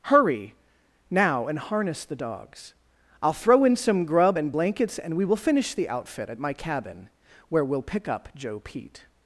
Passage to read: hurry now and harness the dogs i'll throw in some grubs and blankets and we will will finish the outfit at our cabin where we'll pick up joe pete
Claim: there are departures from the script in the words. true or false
true